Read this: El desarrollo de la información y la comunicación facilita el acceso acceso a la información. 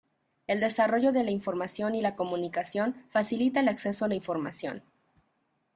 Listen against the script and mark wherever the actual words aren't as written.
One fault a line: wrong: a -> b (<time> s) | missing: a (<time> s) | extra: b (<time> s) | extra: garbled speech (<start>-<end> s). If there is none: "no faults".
missing: acceso (4.0 s)